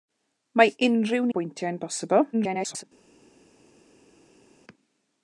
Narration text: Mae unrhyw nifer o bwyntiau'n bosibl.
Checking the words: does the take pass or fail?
fail